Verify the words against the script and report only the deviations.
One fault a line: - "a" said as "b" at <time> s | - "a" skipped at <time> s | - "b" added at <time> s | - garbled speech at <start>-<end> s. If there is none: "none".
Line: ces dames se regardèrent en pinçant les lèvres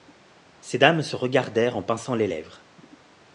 none